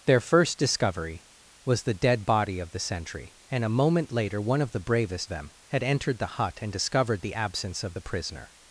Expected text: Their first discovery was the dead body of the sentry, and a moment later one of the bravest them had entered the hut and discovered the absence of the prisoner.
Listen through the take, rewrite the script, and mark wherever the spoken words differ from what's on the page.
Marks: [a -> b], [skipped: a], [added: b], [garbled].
Their first discovery was the dead body of the sentry, and a moment later one of the bravest them had entered the hut and discovered the absence of the prisoner.